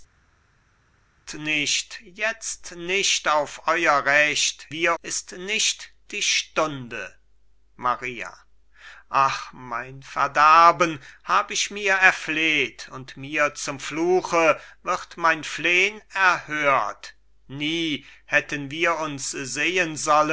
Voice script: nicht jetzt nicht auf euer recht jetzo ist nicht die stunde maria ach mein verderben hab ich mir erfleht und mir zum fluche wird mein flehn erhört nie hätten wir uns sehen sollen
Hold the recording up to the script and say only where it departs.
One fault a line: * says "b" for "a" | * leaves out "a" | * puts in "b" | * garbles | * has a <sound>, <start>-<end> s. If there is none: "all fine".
* says "wir" for "jetzo"